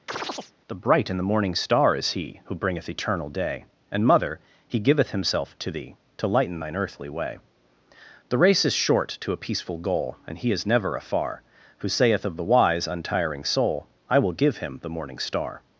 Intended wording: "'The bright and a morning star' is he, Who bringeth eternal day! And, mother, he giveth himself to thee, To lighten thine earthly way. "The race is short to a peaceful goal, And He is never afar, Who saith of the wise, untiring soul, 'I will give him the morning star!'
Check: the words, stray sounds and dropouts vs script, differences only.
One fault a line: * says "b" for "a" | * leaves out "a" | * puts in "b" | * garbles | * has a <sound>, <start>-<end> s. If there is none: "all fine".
* has a chirp, 0.1-0.5 s
* says "the" for "a"